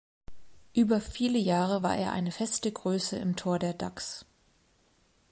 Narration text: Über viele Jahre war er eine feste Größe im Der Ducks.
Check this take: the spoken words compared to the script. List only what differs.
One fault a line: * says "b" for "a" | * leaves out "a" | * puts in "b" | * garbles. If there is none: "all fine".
* puts in "Tor"